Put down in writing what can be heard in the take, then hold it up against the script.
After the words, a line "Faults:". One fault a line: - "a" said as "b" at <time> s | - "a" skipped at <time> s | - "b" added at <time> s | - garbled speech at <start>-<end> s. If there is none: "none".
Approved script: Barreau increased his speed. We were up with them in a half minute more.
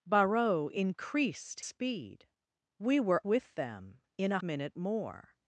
Barreau increased speed. We were with them in a minute more.
Faults:
- "his" skipped at 1.6 s
- "up" skipped at 3.2 s
- "half" skipped at 4.4 s